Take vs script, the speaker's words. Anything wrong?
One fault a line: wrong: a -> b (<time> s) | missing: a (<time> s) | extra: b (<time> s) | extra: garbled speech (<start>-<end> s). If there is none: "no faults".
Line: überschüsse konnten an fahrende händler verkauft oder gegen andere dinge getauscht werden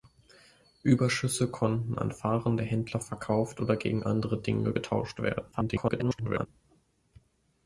extra: garbled speech (5.5-6.5 s)